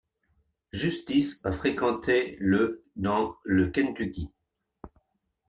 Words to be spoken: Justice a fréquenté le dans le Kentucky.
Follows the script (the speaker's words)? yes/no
yes